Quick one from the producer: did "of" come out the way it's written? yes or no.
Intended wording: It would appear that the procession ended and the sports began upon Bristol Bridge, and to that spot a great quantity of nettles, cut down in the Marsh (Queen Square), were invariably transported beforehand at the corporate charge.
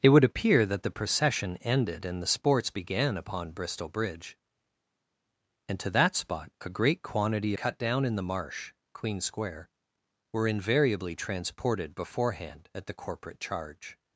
no